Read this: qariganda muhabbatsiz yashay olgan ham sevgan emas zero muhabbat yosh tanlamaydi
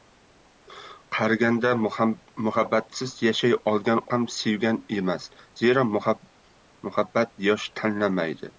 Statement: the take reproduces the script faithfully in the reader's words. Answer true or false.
true